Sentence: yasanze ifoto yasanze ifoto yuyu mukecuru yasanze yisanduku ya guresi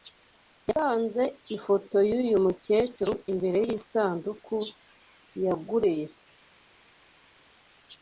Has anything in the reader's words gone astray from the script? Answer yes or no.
yes